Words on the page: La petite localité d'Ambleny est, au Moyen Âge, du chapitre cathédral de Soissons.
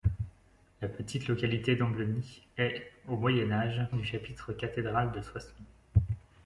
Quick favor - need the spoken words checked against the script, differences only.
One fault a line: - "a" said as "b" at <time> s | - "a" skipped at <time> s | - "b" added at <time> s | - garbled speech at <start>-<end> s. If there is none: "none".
none